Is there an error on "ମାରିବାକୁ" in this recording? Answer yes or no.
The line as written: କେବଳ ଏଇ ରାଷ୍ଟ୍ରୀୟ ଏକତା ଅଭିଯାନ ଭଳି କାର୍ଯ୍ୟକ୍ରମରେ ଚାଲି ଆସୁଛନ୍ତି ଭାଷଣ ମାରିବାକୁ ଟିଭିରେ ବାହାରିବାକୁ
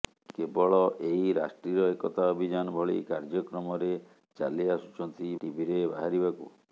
yes